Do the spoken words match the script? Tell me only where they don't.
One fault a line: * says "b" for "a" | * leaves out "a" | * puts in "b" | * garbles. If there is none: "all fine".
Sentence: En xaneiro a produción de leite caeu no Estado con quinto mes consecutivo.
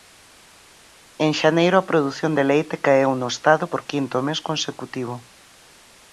* says "por" for "con"